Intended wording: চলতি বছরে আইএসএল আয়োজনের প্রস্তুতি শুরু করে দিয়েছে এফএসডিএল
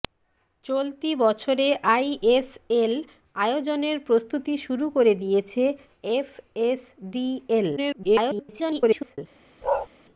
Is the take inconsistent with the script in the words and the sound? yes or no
yes